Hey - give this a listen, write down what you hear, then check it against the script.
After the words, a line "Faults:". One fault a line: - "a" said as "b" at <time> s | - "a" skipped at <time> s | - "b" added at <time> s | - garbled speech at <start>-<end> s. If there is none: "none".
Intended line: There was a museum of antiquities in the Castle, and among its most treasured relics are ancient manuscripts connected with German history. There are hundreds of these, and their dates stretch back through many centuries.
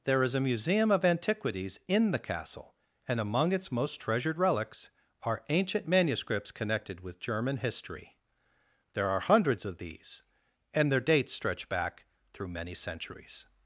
There is a museum of antiquities in the Castle, and among its most treasured relics are ancient manuscripts connected with German history. There are hundreds of these, and their dates stretch back through many centuries.
Faults:
- "was" said as "is" at 0.2 s